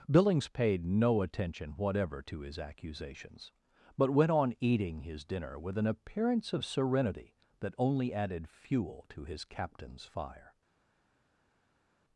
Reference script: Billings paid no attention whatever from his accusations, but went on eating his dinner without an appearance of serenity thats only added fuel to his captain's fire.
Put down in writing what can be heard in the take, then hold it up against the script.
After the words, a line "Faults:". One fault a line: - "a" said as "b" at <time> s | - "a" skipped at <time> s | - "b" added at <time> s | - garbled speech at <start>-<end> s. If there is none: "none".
Billings paid no attention whatever to his accusations, but went on eating his dinner with an appearance of serenity that only added fuel to his captain's fire.
Faults:
- "from" said as "to" at 2.2 s
- "without" said as "with" at 5.6 s
- "thats" said as "that" at 7.6 s